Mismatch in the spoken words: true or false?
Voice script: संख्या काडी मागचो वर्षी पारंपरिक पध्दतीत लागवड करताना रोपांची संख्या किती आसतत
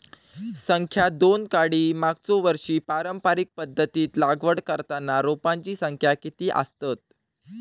true